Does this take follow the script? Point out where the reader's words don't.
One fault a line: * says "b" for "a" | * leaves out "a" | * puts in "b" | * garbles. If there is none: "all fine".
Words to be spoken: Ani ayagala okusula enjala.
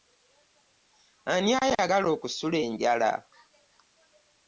all fine